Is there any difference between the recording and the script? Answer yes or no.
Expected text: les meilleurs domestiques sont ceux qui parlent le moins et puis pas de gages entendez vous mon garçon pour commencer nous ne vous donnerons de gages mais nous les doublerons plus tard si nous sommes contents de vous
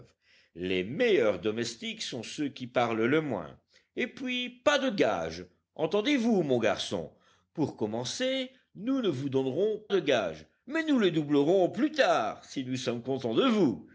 no